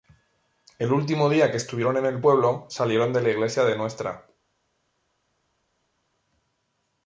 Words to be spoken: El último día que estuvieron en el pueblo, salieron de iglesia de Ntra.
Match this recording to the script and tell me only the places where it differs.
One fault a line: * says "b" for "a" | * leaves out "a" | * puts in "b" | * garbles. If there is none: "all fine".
* puts in "la"